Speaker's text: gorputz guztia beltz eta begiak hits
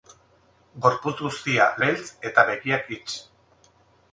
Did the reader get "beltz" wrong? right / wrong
right